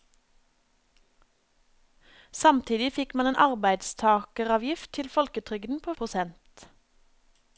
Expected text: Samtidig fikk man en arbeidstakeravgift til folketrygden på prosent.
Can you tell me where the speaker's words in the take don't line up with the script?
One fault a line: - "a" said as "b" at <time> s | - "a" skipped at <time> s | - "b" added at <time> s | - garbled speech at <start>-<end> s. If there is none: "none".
none